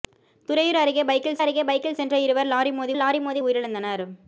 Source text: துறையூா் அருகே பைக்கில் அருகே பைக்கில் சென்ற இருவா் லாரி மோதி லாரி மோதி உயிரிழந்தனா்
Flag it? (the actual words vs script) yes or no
no